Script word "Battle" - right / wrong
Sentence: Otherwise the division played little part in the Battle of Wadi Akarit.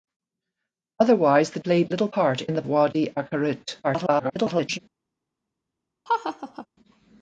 wrong